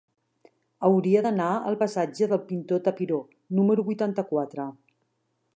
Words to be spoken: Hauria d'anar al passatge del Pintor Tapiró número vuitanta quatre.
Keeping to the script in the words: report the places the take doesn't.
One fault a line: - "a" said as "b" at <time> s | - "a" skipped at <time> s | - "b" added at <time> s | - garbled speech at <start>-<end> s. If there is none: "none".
none